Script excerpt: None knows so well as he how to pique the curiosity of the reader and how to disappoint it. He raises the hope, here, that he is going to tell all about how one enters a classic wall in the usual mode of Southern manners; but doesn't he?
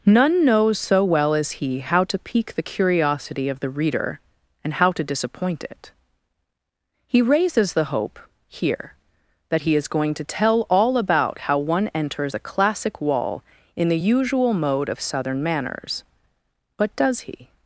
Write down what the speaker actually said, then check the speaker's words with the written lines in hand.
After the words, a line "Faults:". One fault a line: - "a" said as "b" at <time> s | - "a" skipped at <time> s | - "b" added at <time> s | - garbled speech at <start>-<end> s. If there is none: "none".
None knows so well as he how to pique the curiosity of the reader and how to disappoint it. He raises the hope, here, that he is going to tell all about how one enters a classic wall in the usual mode of Southern manners; but does he?
Faults:
- "doesn't" said as "does" at 16.9 s